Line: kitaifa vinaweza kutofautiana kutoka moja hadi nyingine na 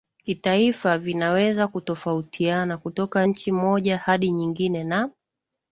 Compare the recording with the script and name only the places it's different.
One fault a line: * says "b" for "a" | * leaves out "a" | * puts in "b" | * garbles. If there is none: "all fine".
* puts in "nchi"